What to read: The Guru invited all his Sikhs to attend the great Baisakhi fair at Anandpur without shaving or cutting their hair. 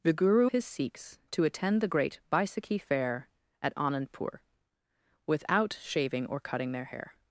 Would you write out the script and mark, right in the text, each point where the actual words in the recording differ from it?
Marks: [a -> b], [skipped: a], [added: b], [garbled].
The Guru [skipped: invited all] his Sikhs to attend the great Baisakhi fair at Anandpur without shaving or cutting their hair.